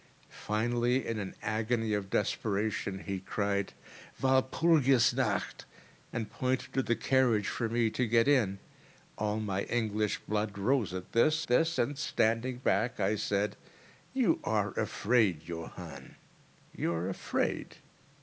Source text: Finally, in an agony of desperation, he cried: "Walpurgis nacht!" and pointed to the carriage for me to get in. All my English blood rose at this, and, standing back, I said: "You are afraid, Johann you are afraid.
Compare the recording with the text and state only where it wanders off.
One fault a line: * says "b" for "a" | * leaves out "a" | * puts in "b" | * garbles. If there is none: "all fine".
* puts in "this"